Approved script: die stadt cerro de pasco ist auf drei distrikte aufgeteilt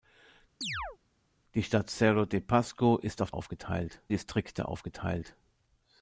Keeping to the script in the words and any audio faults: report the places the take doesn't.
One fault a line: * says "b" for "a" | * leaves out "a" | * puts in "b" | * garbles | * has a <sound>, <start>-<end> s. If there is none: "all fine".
* has a chirp, 0.6-1.0 s
* says "aufgeteilt" for "drei"